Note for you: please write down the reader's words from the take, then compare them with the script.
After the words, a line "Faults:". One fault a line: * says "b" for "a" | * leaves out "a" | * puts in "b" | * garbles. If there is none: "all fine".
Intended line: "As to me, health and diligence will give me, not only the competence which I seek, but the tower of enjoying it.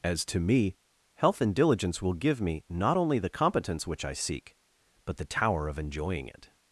"As to me, health and diligence will give me, not only the competence which I seek, but the tower of enjoying it.
Faults:
all fine